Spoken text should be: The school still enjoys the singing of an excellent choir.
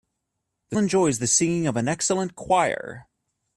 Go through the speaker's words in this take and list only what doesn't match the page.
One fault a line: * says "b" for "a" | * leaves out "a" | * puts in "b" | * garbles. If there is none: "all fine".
* leaves out "school still"